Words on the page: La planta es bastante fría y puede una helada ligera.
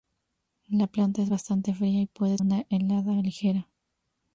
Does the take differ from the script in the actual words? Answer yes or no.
no